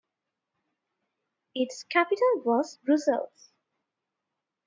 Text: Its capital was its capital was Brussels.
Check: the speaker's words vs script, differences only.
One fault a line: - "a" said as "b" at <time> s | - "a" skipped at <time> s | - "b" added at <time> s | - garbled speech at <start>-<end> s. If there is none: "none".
- "its capital was" skipped at 2.8 s